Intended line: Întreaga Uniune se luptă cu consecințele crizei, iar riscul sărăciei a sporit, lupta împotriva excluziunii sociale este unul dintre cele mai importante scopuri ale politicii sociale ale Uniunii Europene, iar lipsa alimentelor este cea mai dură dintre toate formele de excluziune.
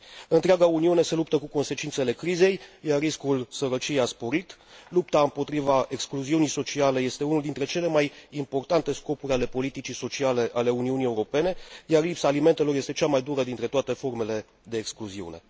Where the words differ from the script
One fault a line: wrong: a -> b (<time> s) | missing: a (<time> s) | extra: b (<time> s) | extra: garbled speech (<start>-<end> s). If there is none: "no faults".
no faults